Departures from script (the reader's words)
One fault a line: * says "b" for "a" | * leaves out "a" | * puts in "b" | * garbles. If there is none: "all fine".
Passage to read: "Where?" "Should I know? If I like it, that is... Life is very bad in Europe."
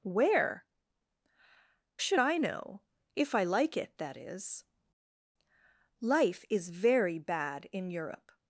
all fine